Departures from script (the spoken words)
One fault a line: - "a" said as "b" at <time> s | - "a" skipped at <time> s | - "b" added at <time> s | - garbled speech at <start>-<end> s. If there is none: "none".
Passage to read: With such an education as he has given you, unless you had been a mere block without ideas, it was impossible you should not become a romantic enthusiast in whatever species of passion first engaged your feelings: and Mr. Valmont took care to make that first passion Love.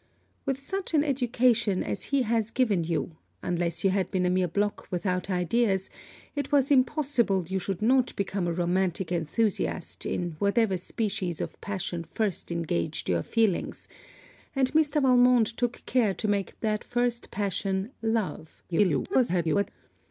- garbled speech at 18.7-19.7 s